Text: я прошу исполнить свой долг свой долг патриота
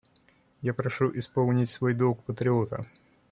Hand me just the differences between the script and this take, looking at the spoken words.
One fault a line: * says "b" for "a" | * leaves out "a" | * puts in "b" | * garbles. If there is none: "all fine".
* leaves out "свой долг"